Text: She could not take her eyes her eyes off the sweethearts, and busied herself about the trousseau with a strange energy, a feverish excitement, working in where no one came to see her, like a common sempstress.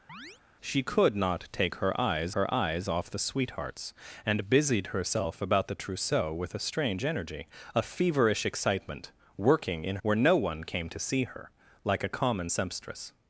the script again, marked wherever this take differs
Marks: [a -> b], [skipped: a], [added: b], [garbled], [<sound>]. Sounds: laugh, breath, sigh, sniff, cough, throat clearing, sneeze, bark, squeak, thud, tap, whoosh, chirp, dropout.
[chirp] She could not take her eyes her eyes off the sweethearts, and busied herself about the trousseau with a strange energy, a feverish excitement, working in where no one came to see her, like a common sempstress.